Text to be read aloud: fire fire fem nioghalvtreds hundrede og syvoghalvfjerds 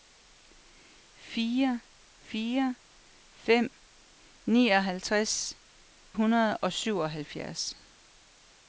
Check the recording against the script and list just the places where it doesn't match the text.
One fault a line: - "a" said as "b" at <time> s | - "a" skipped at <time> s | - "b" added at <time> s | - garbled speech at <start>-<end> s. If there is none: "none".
none